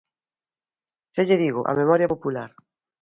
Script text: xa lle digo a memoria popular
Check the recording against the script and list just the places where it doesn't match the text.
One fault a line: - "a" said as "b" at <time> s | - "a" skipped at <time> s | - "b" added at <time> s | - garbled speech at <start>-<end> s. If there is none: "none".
none